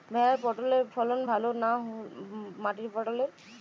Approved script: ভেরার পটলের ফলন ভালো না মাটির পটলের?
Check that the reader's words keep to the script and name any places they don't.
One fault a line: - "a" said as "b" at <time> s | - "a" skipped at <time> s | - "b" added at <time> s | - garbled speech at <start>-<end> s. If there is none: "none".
none